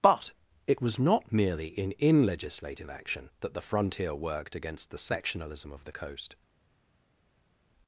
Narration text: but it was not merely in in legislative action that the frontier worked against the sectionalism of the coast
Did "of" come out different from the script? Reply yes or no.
no